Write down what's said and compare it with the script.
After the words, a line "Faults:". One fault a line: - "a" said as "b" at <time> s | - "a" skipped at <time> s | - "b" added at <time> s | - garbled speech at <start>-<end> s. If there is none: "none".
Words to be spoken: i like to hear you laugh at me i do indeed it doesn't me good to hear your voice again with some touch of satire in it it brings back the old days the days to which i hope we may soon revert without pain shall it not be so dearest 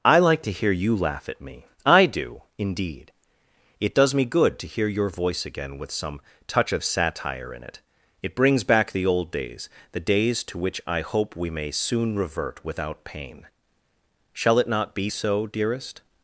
i like to hear you laugh at me i do indeed it does me good to hear your voice again with some touch of satire in it it brings back the old days the days to which i hope we may soon revert without pain shall it not be so dearest
Faults:
- "doesn't" said as "does" at 3.9 s